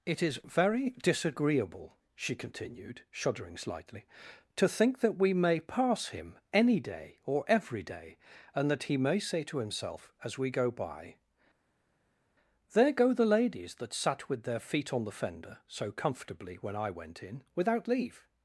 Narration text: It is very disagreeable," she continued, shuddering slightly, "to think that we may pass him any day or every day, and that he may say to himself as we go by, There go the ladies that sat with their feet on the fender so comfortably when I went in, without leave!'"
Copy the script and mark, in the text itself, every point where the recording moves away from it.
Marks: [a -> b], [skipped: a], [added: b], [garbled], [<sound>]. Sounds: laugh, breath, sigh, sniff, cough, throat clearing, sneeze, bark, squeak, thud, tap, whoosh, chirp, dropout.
It is very disagreeable," she continued, shuddering slightly, "to think that we may pass him any day or every day, and that he may say to himself as we go by, There go the ladies that sat with their feet on the fender so comfortably when I went in, without leave!'"